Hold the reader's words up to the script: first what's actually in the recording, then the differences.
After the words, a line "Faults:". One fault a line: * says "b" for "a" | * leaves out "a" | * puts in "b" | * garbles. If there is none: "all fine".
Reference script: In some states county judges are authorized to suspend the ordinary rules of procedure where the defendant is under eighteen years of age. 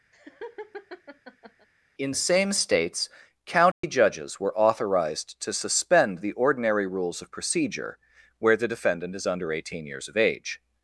In same states county judges were authorized to suspend the ordinary rules of procedure where the defendant is under eighteen years of age.
Faults:
* says "same" for "some"
* says "were" for "are"